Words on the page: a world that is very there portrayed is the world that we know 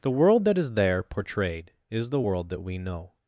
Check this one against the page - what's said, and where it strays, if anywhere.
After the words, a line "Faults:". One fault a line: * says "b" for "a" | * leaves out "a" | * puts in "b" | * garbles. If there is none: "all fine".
the world that is there portrayed is the world that we know
Faults:
* says "the" for "a"
* leaves out "very"